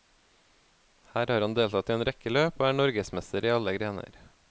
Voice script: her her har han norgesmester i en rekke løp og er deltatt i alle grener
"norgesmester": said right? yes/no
no